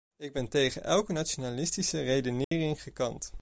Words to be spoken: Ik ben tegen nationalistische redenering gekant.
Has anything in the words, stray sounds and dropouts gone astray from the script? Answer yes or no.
yes